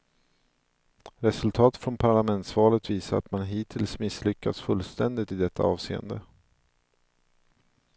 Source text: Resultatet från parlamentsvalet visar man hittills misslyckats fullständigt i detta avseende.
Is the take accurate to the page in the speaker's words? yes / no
no